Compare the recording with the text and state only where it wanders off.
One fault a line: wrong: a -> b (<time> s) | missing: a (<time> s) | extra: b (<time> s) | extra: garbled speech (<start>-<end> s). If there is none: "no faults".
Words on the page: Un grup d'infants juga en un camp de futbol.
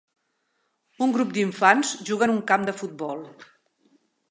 no faults